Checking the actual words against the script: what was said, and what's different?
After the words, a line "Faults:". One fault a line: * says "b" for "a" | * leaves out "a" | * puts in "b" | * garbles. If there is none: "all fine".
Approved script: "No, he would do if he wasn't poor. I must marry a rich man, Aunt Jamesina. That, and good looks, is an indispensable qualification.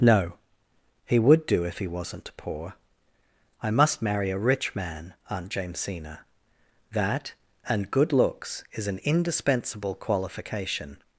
"No, he would do if he wasn't poor. I must marry a rich man, Aunt Jamesina. That, and good looks, is an indispensable qualification.
Faults:
all fine